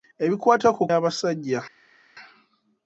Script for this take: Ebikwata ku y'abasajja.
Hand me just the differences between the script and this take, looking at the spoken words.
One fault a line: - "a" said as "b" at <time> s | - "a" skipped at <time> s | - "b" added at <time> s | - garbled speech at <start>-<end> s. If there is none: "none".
none